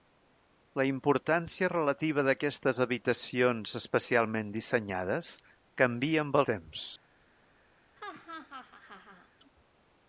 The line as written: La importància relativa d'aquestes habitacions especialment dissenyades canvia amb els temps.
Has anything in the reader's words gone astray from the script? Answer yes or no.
yes